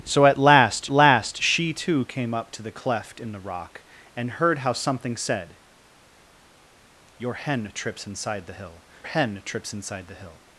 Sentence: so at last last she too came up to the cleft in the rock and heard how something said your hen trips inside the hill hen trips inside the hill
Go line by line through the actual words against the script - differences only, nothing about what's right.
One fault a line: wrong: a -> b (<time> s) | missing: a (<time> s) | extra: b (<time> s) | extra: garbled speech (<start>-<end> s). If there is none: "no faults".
no faults